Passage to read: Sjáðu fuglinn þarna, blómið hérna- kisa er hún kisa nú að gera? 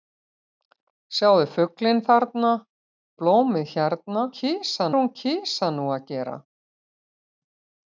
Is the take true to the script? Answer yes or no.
yes